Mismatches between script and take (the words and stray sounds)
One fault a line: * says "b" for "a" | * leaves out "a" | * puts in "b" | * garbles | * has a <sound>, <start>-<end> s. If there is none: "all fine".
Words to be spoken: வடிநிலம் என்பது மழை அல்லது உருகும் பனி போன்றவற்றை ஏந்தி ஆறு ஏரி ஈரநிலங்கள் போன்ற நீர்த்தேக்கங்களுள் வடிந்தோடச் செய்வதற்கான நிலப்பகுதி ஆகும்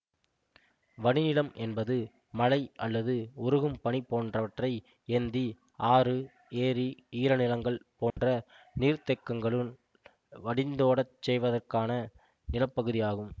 * has a dropout, 8.1-8.2 s